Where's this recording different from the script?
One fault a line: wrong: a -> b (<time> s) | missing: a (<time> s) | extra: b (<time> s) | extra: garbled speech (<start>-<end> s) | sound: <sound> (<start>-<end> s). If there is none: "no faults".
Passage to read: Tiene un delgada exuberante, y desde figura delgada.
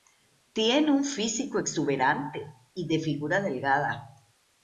wrong: delgada -> físico (1.1 s)
wrong: desde -> de (2.9 s)